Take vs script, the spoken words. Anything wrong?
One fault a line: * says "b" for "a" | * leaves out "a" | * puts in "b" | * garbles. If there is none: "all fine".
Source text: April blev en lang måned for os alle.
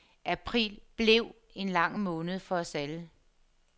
all fine